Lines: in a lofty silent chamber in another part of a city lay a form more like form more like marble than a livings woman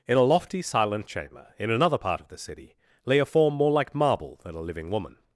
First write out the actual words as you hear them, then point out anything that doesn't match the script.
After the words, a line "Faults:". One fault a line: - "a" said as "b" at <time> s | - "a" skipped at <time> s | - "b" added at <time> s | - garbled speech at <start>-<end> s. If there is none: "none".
in a lofty silent chamber in another part of the city lay a form more like marble than a living woman
Faults:
- "a" said as "the" at 2.3 s
- "form more like" skipped at 4.0 s
- "livings" said as "living" at 4.6 s